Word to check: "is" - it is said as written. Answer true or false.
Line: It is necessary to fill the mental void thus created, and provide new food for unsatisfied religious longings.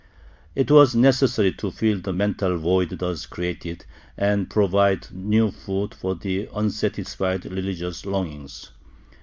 false